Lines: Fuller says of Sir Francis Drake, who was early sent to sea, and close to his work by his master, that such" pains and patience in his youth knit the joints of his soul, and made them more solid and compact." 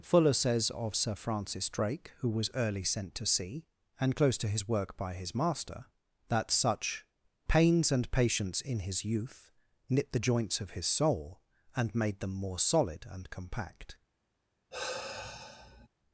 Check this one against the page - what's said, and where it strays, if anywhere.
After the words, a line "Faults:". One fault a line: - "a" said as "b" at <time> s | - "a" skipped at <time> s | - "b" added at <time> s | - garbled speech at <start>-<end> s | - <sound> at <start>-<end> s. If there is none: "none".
Fuller says of Sir Francis Drake, who was early sent to sea, and close to his work by his master, that such" pains and patience in his youth knit the joints of his soul, and made them more solid and compact."
Faults:
- sigh at 14.7-15.9 s